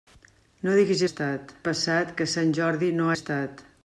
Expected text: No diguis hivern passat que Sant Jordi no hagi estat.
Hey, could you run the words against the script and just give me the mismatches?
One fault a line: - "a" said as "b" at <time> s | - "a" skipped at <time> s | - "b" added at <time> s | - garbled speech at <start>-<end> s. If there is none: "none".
- "hivern" said as "estat" at 1.1 s
- "hagi" skipped at 3.1 s